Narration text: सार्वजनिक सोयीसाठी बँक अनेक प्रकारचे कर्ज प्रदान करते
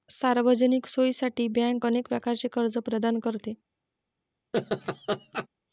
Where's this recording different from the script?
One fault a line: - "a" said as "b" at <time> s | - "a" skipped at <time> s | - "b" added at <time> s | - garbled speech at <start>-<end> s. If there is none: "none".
none